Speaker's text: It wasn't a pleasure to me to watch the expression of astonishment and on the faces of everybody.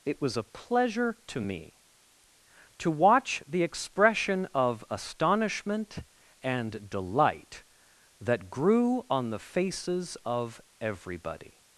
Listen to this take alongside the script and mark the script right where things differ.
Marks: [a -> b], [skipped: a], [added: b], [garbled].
It [wasn't -> was] a pleasure to me to watch the expression of astonishment and [added: delight that grew] on the faces of everybody.